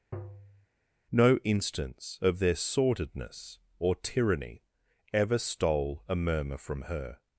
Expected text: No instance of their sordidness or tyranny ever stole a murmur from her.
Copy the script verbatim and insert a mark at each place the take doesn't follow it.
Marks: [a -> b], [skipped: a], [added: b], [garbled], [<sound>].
[tap] No instance of their sordidness or tyranny ever stole a murmur from her.